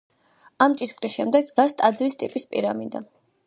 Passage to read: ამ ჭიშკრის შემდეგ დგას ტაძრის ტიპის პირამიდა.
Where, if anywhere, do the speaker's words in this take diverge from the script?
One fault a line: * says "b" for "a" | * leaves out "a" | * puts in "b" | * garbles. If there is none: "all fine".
all fine